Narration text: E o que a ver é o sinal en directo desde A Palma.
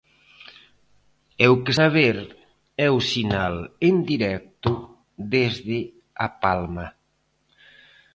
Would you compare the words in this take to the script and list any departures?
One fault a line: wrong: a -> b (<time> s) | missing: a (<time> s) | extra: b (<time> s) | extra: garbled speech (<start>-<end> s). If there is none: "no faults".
no faults